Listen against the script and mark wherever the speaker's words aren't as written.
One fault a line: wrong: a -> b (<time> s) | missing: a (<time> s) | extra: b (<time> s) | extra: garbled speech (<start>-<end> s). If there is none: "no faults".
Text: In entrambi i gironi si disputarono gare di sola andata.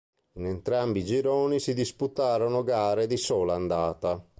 no faults